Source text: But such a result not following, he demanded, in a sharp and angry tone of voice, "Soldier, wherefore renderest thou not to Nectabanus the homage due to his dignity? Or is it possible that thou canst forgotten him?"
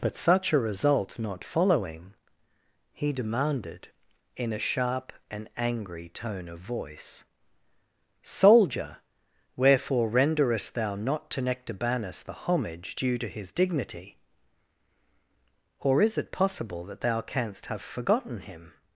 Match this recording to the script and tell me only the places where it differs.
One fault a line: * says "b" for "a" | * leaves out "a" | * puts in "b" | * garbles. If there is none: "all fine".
* puts in "have"